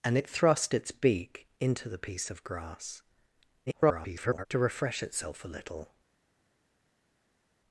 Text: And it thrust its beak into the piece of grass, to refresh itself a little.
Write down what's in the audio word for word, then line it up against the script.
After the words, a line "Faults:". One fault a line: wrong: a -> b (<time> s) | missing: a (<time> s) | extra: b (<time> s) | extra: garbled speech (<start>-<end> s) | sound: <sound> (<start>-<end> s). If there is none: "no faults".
And it thrust its beak into the piece of grass, [garbled] to refresh itself a little.
Faults:
extra: garbled speech (3.7-4.5 s)